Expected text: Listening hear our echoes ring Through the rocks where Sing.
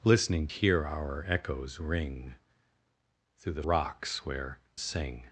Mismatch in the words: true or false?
false